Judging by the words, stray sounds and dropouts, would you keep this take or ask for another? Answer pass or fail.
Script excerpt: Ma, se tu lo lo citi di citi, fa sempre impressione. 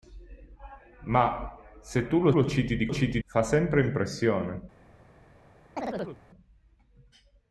fail